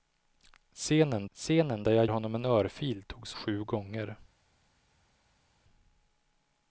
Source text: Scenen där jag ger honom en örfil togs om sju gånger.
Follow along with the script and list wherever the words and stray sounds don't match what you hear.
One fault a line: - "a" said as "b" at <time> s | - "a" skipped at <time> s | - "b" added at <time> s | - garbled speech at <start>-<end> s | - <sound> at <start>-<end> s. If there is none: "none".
- "scenen" added at 1.3 s
- "ger" skipped at 2.1 s
- "om" skipped at 3.4 s